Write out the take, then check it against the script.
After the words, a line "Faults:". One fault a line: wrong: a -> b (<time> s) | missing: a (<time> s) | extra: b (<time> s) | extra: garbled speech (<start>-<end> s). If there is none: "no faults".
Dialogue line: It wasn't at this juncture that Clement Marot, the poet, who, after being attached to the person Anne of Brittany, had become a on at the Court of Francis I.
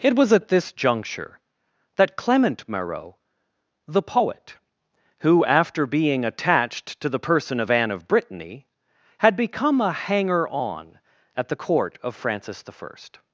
It was at this juncture that Clement Marot, the poet, who, after being attached to the person of Anne of Brittany, had become a hanger on at the Court of Francis I.
Faults:
wrong: wasn't -> was (0.1 s)
extra: of (7.6 s)
extra: hanger (9.9 s)